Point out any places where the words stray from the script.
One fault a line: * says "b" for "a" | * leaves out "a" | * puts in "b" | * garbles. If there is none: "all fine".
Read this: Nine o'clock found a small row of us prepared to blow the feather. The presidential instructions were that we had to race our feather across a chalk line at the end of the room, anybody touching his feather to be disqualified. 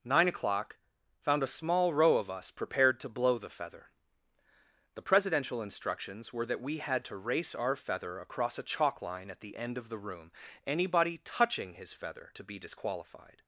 all fine